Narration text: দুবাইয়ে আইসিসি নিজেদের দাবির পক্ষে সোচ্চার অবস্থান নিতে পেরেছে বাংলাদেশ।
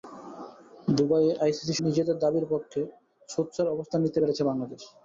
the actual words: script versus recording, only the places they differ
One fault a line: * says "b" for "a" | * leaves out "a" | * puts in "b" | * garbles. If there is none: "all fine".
all fine